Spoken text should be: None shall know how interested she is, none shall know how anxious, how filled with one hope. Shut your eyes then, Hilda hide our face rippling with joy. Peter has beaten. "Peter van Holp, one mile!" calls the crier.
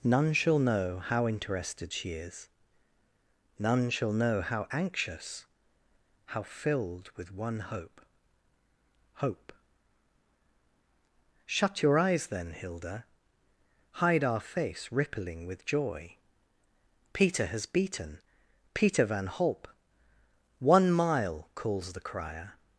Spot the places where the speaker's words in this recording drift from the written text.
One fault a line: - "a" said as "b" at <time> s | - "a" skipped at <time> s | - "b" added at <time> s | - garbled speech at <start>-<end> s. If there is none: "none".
- "hope" added at 9.1 s